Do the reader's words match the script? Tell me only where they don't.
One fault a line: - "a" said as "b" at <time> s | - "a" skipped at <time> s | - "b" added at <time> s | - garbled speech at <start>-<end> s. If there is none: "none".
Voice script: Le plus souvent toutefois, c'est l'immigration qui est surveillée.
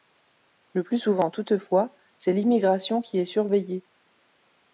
none